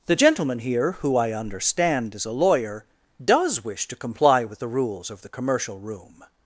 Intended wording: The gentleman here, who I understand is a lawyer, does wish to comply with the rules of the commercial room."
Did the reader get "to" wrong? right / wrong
right